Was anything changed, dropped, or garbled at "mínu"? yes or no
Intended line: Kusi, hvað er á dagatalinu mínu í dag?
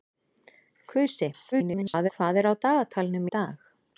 yes